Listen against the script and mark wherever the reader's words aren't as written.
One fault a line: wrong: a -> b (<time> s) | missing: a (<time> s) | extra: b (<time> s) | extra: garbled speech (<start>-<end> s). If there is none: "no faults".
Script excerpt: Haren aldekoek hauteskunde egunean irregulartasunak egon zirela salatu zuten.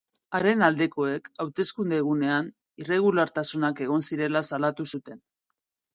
no faults